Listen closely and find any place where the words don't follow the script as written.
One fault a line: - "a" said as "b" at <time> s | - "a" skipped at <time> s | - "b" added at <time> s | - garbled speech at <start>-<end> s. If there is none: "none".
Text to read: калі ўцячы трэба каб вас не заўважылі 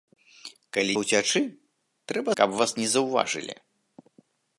none